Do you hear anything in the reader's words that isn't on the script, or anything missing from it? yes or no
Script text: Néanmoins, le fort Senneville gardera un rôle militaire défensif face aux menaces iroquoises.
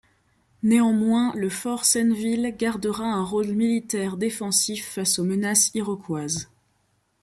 no